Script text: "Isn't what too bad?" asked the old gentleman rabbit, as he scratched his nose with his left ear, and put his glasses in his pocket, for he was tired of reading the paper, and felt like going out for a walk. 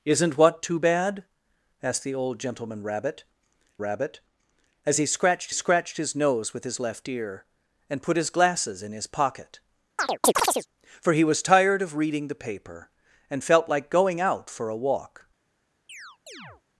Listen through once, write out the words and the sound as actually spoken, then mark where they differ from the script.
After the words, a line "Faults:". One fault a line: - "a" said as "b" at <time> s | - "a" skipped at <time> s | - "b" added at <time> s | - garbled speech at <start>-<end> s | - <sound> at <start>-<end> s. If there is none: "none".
"Isn't what too bad?" asked the old gentleman rabbit rabbit, as he scratched scratched his nose with his left ear, and put his glasses in his pocket, for he was tired of reading the paper, and felt like going out for a walk.
Faults:
- "rabbit" added at 3.8 s
- "scratched" added at 5.5 s
- chirp at 10.0-10.7 s
- chirp at 15.9-16.6 s